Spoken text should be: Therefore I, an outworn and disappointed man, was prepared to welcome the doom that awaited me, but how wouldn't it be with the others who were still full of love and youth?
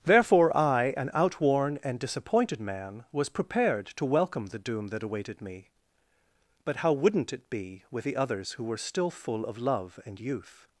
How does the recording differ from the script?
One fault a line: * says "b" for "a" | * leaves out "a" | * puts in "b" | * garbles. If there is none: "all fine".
all fine